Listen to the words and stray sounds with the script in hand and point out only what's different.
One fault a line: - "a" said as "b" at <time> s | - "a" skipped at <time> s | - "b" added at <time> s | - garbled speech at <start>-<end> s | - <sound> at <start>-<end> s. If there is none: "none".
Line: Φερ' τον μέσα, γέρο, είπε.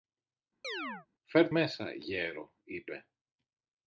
- chirp at 0.6-1.1 s
- "τον" skipped at 1.5 s